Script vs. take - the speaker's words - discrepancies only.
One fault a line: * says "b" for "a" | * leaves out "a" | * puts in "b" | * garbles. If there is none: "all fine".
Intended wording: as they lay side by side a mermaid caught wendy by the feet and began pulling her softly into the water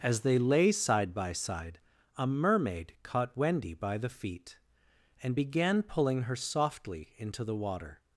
all fine